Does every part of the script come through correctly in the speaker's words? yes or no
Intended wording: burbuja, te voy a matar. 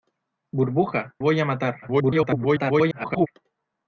no